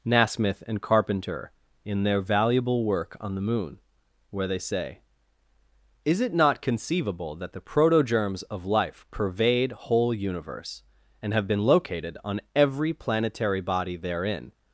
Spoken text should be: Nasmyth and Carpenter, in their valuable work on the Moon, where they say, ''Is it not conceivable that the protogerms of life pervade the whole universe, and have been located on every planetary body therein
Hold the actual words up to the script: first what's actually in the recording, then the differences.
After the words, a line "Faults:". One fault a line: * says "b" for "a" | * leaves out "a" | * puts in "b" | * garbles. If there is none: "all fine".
Nasmyth and Carpenter, in their valuable work on the Moon, where they say, ''Is it not conceivable that the protogerms of life pervade whole universe, and have been located on every planetary body therein
Faults:
* leaves out "the"